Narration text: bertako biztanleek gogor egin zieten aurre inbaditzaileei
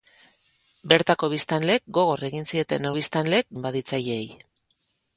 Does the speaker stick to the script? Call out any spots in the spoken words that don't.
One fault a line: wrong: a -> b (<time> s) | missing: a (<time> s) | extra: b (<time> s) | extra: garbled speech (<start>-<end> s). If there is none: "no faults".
wrong: aurre -> biztanleek (3.0 s)